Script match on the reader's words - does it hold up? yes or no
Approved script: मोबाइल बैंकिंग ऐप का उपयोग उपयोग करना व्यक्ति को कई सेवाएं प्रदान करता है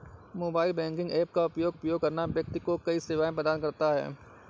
yes